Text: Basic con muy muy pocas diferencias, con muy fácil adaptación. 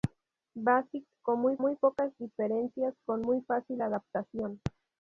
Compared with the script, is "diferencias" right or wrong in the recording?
right